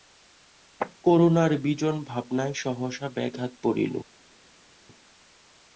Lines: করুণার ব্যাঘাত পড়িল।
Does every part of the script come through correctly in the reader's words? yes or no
no